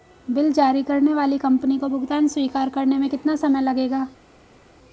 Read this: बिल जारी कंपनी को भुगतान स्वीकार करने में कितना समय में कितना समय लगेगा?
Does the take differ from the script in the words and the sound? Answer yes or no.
yes